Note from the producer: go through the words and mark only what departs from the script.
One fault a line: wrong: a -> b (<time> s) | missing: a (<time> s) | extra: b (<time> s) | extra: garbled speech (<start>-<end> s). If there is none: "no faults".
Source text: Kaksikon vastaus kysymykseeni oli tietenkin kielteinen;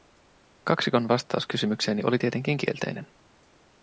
no faults